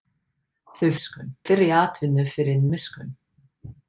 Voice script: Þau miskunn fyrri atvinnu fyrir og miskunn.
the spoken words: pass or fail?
pass